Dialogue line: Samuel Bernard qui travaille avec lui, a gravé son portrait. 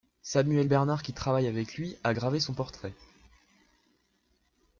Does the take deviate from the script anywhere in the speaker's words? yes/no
no